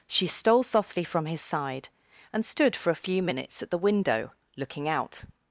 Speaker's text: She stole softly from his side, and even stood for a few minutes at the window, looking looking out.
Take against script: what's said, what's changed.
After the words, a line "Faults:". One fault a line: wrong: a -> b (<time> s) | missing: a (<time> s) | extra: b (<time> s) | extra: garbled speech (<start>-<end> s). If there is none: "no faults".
She stole softly from his side, and stood for a few minutes at the window, looking out.
Faults:
missing: even (2.5 s)
missing: looking (4.9 s)